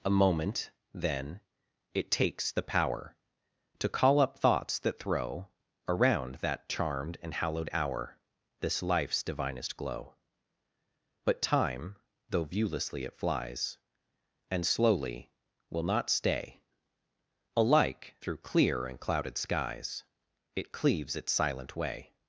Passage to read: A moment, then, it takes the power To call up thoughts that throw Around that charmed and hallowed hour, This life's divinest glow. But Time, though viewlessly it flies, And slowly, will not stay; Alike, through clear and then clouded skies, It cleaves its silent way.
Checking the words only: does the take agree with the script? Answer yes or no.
no